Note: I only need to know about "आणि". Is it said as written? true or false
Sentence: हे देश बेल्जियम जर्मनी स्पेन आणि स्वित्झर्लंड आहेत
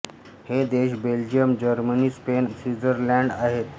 false